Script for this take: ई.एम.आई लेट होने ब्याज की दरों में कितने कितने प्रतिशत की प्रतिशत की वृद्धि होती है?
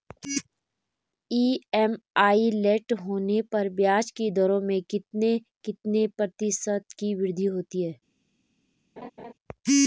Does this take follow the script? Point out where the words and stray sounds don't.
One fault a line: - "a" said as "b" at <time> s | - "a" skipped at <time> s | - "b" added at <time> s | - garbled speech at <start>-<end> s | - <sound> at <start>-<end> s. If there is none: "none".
- "पर" added at 3.5 s
- "प्रतिशत की" skipped at 7.1 s
- laugh at 9.0-9.3 s